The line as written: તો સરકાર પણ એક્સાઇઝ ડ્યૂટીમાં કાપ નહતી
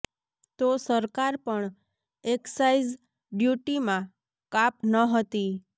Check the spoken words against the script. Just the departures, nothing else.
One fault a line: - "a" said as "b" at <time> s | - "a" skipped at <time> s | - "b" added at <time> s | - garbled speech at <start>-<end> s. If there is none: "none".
none